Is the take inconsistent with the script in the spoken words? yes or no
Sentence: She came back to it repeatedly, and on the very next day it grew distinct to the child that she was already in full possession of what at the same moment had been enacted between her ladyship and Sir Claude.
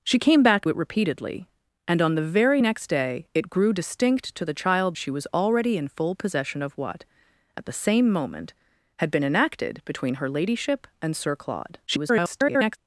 yes